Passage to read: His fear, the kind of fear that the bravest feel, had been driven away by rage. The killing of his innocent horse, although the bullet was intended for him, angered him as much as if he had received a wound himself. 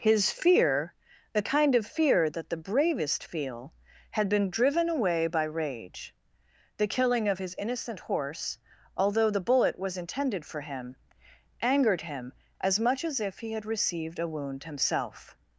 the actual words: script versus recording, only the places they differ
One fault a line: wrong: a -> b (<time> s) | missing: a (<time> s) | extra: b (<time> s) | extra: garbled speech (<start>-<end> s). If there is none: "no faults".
no faults